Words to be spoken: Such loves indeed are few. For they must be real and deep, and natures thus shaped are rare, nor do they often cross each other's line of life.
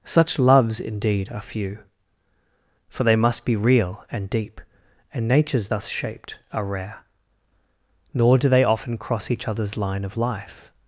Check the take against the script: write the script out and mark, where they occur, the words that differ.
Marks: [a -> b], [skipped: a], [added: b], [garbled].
Such loves indeed are few. For they must be real and deep, and natures thus shaped are rare, nor do they often cross each other's line of life.